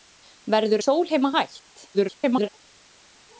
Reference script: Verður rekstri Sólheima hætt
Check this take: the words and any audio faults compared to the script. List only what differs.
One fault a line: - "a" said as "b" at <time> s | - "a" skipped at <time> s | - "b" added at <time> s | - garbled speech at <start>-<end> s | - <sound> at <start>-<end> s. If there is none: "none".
- "rekstri" skipped at 0.8 s
- garbled speech at 1.9-2.5 s